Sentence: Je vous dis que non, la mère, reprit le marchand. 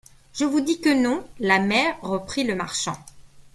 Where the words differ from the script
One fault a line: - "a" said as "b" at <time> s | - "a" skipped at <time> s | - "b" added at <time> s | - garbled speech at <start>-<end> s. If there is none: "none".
none